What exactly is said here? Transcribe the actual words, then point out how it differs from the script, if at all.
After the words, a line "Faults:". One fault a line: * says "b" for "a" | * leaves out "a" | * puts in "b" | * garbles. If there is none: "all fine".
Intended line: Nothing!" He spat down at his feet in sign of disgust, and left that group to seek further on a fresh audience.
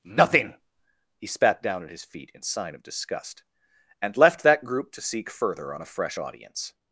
Nothing!" He spat down at his feet in sign of disgust, and left that group to seek further on a fresh audience.
Faults:
all fine